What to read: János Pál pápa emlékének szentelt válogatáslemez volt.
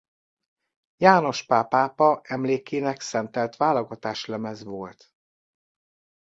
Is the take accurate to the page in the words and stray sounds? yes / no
yes